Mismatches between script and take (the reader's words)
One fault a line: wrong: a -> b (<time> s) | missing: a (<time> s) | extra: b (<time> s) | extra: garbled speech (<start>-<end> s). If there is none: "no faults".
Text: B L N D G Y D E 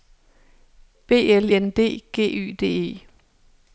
no faults